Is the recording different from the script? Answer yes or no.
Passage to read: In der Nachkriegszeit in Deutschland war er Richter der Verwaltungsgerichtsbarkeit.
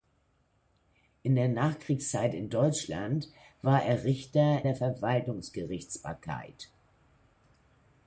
no